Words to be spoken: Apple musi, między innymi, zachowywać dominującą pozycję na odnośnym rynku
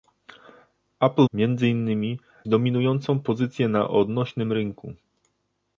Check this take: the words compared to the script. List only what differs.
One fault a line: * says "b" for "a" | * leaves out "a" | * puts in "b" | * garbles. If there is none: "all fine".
* leaves out "musi"
* leaves out "zachowywać"